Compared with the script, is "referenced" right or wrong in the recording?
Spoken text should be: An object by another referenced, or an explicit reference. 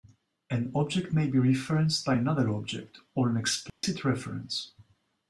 wrong